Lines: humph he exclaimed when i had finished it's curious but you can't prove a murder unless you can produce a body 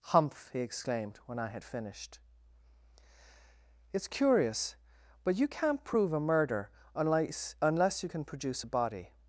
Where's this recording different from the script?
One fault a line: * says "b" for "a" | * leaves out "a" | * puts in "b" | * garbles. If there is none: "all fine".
* puts in "unless"